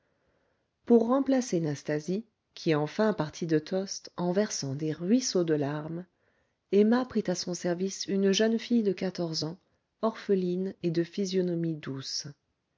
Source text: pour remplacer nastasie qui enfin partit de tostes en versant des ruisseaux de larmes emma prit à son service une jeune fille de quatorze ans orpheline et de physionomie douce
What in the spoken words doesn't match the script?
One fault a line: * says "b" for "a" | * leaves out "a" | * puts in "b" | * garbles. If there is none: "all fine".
all fine